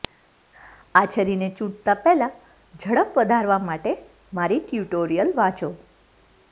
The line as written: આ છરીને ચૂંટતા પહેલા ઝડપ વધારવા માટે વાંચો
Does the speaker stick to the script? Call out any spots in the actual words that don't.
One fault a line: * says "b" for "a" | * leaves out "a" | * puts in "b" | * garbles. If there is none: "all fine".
* puts in "મારી ટ્યુટોરીયલ"